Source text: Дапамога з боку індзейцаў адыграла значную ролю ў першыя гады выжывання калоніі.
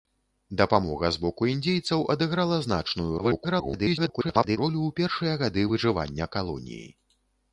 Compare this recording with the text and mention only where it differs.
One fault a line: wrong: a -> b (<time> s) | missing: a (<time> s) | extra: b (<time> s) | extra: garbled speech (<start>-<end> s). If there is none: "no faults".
extra: garbled speech (3.2-4.6 s)